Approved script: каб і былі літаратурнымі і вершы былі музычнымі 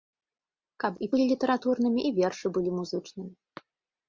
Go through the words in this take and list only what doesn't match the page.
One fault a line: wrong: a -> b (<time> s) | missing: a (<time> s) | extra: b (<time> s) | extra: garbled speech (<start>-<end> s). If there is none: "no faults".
no faults